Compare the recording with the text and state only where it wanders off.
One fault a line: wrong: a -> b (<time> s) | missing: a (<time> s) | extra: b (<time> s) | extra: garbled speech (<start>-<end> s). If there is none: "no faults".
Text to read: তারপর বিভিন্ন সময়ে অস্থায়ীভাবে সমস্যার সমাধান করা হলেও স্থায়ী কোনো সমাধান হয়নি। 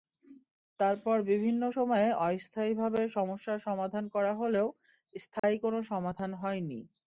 no faults